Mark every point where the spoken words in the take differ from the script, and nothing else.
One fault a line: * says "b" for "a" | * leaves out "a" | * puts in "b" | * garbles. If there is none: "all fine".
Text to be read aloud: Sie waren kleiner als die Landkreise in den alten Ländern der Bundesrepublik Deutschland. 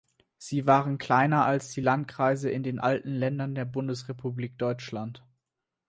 all fine